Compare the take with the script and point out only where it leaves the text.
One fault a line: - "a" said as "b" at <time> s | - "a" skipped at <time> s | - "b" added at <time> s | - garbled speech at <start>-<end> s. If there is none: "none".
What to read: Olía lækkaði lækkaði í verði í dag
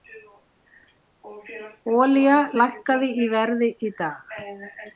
- "lækkaði" skipped at 3.1 s